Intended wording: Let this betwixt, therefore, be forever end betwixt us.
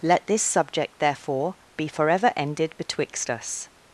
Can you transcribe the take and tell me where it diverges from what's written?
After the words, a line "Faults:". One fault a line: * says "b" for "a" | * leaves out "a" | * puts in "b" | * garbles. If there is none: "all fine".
Let this subject, therefore, be forever ended betwixt us.
Faults:
* says "subject" for "betwixt"
* says "ended" for "end"